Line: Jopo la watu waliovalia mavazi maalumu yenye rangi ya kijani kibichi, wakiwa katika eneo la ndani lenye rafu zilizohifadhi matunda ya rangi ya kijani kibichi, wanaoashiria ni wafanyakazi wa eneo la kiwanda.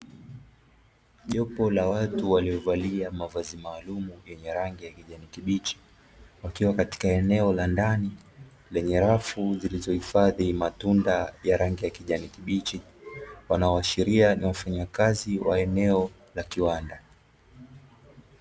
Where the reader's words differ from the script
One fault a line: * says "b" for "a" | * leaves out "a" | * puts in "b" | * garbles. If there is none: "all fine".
all fine